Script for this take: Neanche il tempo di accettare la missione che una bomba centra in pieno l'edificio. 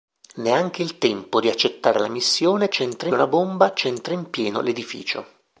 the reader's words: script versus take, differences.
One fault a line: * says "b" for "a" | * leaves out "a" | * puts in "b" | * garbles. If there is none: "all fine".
* says "centra" for "che"